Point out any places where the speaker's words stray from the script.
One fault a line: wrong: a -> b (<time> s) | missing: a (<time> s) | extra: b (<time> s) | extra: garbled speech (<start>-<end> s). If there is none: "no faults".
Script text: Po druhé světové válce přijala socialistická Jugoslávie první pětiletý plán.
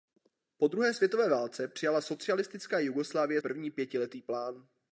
no faults